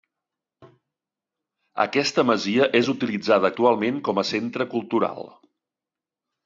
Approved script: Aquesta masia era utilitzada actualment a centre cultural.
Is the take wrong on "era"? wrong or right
wrong